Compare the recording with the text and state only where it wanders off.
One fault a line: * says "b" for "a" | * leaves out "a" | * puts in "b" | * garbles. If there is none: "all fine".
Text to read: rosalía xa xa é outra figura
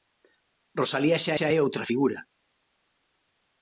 all fine